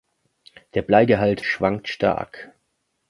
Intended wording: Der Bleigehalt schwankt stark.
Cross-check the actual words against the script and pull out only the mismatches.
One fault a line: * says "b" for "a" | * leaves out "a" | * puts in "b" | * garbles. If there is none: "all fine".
all fine